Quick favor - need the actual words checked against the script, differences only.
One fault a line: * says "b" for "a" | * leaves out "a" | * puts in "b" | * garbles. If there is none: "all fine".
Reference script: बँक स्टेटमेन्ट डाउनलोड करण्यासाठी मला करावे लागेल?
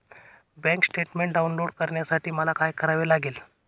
* puts in "काय"